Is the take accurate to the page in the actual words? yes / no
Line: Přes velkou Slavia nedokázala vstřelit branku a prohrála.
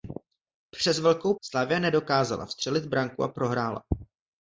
yes